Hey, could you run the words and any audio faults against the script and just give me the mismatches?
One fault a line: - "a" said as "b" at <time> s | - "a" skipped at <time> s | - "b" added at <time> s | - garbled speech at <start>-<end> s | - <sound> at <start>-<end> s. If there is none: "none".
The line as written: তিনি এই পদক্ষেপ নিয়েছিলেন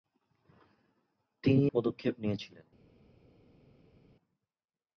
- "এই" skipped at 1.6 s